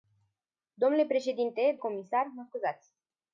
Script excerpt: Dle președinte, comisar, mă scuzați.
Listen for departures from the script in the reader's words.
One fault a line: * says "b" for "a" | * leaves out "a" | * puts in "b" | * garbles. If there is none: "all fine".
all fine